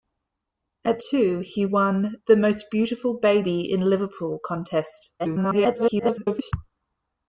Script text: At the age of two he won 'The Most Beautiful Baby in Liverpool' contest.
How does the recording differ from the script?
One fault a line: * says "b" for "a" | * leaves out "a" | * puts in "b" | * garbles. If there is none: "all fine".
* leaves out "the age of"
* garbles